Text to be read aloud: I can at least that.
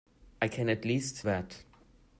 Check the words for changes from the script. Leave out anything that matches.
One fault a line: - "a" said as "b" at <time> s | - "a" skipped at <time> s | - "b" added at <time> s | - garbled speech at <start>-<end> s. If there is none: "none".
none